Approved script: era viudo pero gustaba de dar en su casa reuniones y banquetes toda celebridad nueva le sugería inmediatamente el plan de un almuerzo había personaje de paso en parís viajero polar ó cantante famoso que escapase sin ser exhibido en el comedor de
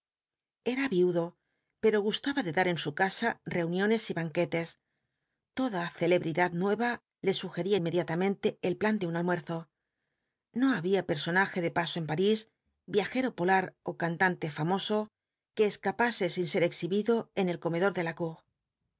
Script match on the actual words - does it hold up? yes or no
no